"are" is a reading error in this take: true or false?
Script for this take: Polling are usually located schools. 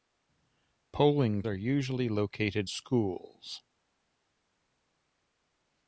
false